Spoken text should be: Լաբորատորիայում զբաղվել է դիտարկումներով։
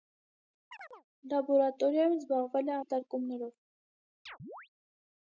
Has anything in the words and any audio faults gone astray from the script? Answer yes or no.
yes